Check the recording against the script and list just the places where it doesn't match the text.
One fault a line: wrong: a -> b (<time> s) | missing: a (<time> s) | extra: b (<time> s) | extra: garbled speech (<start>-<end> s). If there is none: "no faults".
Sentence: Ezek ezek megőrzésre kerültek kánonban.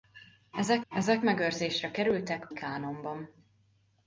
no faults